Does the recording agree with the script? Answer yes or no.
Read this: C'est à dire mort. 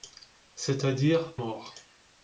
yes